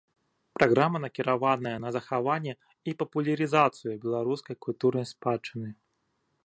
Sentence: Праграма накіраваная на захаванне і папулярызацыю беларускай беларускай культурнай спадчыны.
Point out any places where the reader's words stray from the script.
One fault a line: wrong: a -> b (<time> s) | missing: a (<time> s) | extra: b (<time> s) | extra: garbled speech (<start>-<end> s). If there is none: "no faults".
missing: беларускай (4.5 s)